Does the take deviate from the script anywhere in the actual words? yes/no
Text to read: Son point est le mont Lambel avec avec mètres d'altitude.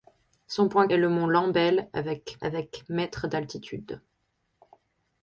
no